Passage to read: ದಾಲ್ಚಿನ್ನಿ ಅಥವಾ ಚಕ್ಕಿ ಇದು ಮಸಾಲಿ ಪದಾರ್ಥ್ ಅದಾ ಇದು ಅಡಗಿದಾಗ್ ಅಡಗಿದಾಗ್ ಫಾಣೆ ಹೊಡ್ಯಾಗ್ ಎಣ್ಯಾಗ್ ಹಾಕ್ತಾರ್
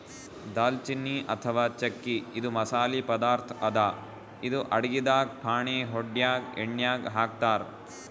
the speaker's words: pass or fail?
fail